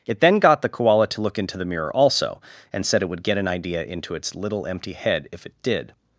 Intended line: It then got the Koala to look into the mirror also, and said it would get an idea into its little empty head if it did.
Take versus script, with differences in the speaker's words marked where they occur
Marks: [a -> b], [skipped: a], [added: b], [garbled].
It then got the Koala to look into the mirror also, and said it would get an idea into its little empty head if it did.